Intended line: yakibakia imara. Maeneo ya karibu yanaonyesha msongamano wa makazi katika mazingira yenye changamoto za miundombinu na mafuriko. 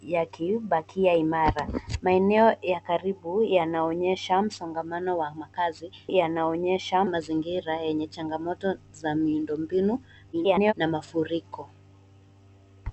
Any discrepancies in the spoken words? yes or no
yes